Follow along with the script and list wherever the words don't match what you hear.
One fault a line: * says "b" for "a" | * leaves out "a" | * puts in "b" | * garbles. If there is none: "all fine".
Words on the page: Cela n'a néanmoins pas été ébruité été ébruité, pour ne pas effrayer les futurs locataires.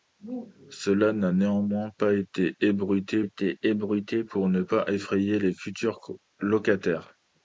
all fine